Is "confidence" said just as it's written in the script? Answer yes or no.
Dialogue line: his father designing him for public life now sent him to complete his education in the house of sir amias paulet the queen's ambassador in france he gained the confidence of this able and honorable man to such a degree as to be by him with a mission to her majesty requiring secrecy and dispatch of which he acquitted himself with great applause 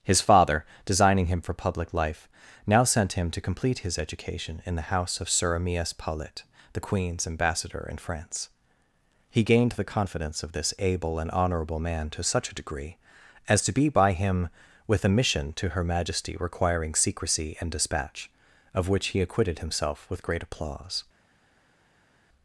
yes